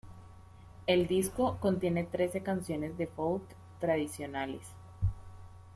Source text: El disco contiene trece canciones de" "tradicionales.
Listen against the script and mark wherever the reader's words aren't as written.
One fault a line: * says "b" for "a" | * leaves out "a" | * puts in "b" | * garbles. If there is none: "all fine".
* puts in "folk"